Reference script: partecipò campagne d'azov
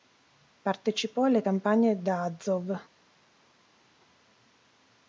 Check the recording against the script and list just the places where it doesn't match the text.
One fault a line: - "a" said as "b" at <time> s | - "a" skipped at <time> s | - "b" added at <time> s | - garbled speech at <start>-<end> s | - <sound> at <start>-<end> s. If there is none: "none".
- "alle" added at 1.2 s